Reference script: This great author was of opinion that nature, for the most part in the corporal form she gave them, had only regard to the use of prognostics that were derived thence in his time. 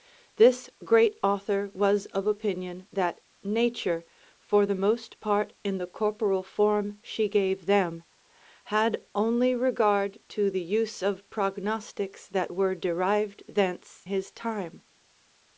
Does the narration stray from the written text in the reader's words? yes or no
yes